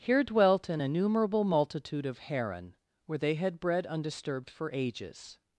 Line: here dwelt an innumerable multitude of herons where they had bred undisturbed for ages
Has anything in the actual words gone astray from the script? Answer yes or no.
yes